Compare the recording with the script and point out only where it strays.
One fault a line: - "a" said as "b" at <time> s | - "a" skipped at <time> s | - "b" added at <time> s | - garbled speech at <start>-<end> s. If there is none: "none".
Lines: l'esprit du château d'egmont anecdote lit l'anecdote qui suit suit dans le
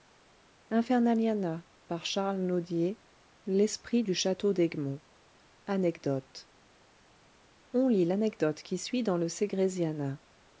- "on" added at 7.7 s
- "suit" skipped at 9.0 s